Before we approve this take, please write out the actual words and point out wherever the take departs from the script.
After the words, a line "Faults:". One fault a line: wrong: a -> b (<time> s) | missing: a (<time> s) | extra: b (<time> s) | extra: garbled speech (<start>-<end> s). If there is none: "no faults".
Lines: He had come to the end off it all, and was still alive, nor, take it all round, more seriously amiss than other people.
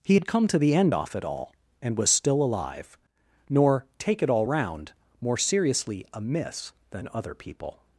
He had come to the end off it all, and was still alive, nor, take it all round, more seriously amiss than other people.
Faults:
no faults